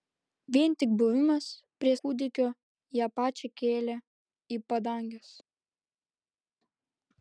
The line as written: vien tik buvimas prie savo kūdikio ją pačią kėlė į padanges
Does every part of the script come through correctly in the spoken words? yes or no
no